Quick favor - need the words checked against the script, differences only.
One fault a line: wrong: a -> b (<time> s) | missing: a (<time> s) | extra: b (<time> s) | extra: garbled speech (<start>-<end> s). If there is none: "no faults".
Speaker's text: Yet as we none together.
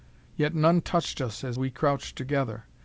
extra: none touched us (0.5 s)
wrong: none -> crouched (1.7 s)